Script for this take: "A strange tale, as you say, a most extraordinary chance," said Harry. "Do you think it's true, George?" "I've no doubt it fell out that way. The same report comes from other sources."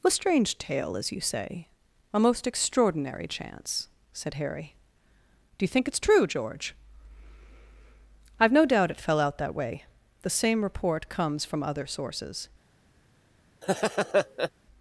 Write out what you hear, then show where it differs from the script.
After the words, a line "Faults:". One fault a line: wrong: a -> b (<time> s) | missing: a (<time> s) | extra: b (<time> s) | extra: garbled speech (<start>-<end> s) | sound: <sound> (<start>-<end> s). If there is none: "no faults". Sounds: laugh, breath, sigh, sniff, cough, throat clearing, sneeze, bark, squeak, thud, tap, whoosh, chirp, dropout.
"A strange tale, as you say, a most extraordinary chance," said Harry. "Do you think it's true, George?" "I've no doubt it fell out that way. The same report comes from other sources."
Faults:
sound: laugh (13.6-14.5 s)